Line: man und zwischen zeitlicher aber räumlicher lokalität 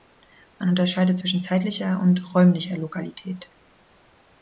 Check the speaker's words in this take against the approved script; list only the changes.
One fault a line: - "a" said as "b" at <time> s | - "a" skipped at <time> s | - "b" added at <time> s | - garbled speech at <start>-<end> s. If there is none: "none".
- "und" said as "unterscheidet" at 0.7 s
- "aber" said as "und" at 2.0 s